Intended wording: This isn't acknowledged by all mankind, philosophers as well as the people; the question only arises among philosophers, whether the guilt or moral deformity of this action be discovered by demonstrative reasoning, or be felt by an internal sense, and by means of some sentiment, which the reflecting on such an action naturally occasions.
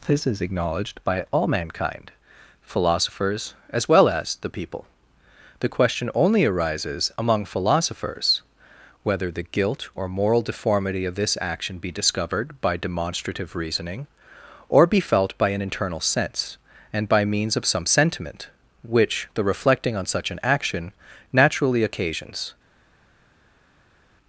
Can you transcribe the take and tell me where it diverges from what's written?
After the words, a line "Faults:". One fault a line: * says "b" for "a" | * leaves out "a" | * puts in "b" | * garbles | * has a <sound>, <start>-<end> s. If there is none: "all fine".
This is acknowledged by all mankind, philosophers as well as the people; the question only arises among philosophers, whether the guilt or moral deformity of this action be discovered by demonstrative reasoning, or be felt by an internal sense, and by means of some sentiment, which the reflecting on such an action naturally occasions.
Faults:
* says "is" for "isn't"